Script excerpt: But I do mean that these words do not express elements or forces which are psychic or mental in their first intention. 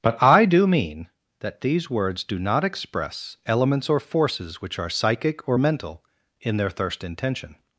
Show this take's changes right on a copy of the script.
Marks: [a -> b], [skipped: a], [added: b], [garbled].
But I do mean that these words do not express elements or forces which are psychic or mental in their [first -> thirst] intention.